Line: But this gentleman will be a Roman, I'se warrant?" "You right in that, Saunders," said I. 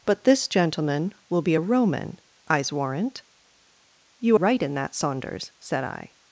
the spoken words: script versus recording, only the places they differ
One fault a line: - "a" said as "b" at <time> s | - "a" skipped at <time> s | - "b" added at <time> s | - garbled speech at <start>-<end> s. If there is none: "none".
none